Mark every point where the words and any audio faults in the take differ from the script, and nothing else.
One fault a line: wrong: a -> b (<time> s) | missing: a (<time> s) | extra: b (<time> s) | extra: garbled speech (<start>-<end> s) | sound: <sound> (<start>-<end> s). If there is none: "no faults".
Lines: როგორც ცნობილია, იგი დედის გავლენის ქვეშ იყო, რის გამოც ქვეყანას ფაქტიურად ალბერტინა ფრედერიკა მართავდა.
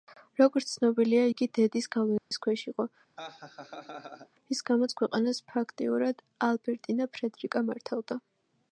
sound: dropout (2.2-2.3 s)
sound: laugh (3.2-4.3 s)